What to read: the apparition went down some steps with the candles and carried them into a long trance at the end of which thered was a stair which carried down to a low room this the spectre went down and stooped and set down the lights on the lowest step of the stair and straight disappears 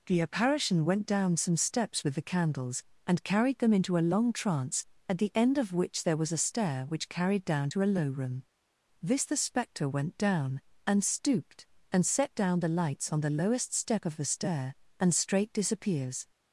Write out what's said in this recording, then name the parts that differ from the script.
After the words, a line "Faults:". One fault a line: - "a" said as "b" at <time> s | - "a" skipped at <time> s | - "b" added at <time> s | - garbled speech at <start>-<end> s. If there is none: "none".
the apparition went down some steps with the candles and carried them into a long trance at the end of which there was a stair which carried down to a low room this the spectre went down and stooped and set down the lights on the lowest step of the stair and straight disappears
Faults:
- "thered" said as "there" at 6.0 s